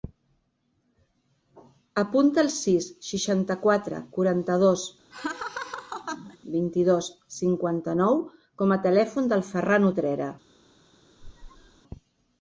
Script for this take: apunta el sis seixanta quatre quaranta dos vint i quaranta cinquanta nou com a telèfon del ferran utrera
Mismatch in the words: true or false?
true